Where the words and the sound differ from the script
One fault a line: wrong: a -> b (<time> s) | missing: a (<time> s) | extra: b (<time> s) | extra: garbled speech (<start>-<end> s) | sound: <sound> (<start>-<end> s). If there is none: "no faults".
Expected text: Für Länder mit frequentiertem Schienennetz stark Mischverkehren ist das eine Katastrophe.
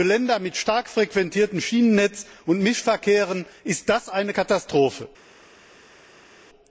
extra: stark (0.6 s)
wrong: stark -> und (2.5 s)